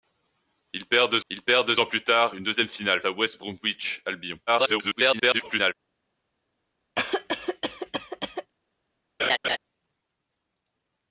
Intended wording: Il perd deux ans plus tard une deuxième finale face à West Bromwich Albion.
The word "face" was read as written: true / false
false